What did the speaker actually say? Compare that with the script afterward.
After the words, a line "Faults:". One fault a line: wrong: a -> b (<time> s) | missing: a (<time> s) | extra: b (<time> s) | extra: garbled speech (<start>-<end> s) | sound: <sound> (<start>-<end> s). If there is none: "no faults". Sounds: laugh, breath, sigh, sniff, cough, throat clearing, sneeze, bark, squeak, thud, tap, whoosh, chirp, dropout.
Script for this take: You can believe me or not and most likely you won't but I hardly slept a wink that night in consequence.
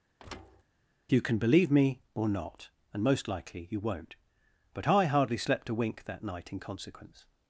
You can believe me or not and most likely you won't but I hardly slept a wink that night in consequence.
Faults:
sound: thud (0.2-0.6 s)